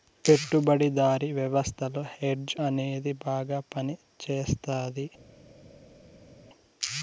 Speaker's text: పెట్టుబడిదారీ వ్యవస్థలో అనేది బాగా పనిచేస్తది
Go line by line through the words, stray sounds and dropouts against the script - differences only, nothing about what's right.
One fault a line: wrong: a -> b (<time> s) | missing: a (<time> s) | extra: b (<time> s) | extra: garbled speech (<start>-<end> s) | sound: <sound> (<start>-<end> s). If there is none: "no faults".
extra: హెడ్జ్ (2.1 s)